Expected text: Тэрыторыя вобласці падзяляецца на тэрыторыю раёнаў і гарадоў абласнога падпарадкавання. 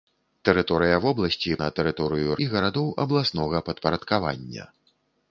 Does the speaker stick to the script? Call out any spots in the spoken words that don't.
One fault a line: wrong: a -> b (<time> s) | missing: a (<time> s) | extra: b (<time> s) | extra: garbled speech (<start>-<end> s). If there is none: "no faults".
missing: падзяляецца (1.6 s)
missing: раёнаў (2.4 s)